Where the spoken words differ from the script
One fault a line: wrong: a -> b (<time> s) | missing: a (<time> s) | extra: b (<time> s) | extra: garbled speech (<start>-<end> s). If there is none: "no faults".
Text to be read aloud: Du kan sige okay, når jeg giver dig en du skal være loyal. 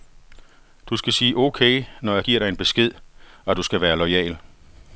wrong: kan -> skal (1.0 s)
extra: besked og (2.6 s)